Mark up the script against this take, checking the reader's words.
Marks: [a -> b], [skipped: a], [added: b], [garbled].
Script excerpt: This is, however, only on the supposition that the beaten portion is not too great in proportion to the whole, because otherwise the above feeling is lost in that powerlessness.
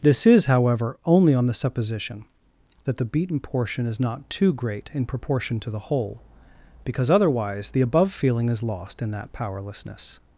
This is, however, only on the supposition that the beaten portion is not too great in proportion to the whole, because otherwise the above feeling is lost in that powerlessness.